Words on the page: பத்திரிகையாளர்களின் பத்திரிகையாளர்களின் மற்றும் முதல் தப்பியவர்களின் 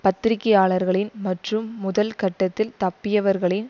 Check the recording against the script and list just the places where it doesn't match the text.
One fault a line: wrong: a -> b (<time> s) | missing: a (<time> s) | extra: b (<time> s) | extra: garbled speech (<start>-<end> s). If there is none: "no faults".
missing: பத்திரிகையாளர்களின் (1.1 s)
extra: கட்டத்தில் (2.1 s)